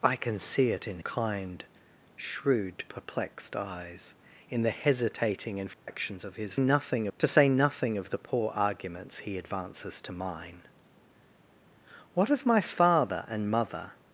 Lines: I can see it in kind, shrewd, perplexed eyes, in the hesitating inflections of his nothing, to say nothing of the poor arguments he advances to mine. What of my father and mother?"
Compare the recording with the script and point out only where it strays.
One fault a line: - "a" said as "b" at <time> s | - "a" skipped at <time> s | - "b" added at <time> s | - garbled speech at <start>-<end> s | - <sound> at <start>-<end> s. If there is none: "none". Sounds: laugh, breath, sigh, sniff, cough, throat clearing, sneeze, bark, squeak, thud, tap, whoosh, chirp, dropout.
- dropout at 5.7-5.9 s